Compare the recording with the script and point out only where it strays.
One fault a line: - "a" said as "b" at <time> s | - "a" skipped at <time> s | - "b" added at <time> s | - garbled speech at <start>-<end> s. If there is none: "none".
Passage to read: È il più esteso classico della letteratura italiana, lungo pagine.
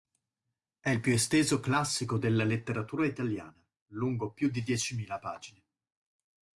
- "più di diecimila" added at 4.3 s